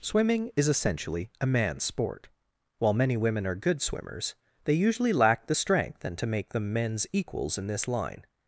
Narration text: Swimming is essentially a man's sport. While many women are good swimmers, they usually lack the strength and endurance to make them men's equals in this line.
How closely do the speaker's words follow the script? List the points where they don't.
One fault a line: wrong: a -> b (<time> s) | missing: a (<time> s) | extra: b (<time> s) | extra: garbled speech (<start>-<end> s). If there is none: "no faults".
missing: endurance (6.2 s)